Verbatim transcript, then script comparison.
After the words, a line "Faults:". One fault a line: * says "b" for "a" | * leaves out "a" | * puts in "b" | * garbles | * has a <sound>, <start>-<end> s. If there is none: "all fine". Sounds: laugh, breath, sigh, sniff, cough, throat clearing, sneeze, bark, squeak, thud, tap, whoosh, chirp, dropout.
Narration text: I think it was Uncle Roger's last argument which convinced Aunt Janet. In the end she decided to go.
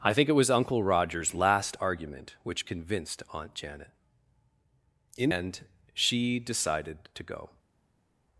I think it was Uncle Roger's last argument which convinced Aunt Janet. In end she decided to go.
Faults:
* leaves out "the"